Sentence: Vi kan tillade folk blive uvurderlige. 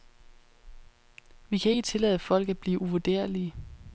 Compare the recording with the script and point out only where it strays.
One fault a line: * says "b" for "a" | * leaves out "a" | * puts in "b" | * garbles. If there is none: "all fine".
* puts in "ikke"
* puts in "at"